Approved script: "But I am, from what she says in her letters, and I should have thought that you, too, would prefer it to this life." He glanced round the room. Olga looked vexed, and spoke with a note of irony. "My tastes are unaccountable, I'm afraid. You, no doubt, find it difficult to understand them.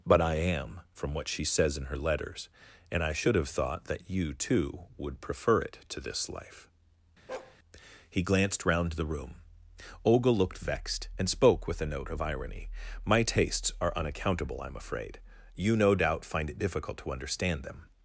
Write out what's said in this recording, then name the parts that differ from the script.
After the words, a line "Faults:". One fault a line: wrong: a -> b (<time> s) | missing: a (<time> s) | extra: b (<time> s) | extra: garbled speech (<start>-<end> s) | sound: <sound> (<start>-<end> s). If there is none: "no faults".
"But I am, from what she says in her letters, and I should have thought that you, too, would prefer it to this life." He glanced round the room. Olga looked vexed, and spoke with a note of irony. "My tastes are unaccountable, I'm afraid. You, no doubt, find it difficult to understand them.
Faults:
sound: bark (7.3-7.6 s)